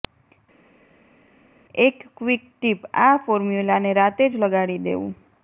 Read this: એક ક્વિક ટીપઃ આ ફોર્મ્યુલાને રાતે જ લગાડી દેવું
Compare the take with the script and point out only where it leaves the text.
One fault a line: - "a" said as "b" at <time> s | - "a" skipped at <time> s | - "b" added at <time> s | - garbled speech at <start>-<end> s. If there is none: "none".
none